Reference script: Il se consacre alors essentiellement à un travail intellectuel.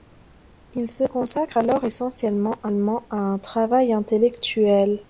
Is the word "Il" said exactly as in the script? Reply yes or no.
yes